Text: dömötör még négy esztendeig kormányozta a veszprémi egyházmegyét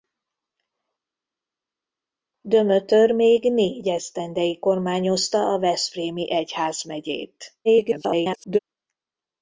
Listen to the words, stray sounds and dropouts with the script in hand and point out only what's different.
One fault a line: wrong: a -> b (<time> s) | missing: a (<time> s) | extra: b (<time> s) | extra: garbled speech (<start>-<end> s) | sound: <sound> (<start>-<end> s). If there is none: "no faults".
extra: garbled speech (7.6-8.6 s)